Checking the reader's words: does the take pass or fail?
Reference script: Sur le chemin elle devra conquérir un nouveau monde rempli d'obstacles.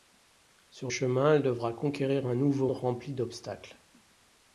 fail